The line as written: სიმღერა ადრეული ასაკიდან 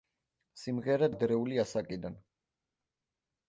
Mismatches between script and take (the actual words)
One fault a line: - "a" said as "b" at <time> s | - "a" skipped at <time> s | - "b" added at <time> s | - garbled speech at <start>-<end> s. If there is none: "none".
none